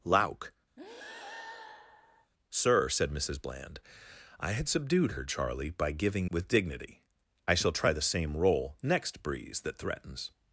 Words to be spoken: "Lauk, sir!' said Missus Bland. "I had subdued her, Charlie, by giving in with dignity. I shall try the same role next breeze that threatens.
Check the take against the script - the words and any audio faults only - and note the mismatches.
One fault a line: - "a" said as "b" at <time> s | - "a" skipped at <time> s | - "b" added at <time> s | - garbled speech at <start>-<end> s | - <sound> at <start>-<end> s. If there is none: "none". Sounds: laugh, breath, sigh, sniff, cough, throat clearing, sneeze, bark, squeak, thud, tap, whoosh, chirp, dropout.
- breath at 0.8-2.3 s
- "in" skipped at 6.3 s